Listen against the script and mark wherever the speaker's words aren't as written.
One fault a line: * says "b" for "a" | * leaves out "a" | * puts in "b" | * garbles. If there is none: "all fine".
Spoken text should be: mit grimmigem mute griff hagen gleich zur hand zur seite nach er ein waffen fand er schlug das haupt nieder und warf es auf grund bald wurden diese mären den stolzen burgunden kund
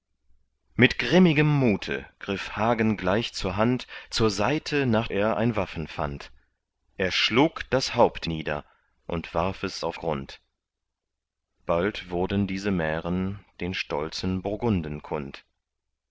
all fine